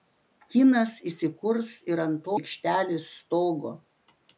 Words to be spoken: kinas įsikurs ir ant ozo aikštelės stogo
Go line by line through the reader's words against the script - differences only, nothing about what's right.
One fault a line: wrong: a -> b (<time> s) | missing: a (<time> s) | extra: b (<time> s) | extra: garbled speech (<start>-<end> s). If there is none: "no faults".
missing: ozo (2.3 s)